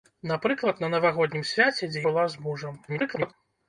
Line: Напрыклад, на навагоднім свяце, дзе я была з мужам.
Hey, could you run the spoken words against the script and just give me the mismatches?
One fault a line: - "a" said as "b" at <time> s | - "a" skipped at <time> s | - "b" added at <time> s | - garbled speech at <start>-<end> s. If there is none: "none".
- "я" skipped at 2.1 s
- garbled speech at 2.9-3.3 s